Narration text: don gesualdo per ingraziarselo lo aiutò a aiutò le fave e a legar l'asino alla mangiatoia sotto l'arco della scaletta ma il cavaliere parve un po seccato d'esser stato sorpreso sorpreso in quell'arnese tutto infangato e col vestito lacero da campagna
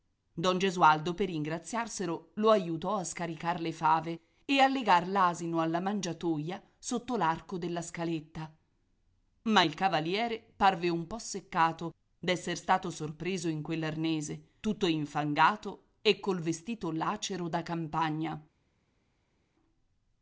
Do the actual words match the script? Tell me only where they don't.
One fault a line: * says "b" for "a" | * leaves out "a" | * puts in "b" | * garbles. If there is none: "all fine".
* says "scaricar" for "aiutò"
* leaves out "sorpreso"